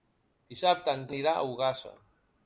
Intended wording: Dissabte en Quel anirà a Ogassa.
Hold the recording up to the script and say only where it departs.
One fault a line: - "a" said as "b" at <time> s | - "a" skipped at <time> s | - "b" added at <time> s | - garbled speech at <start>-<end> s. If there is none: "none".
- "Quel" skipped at 1.1 s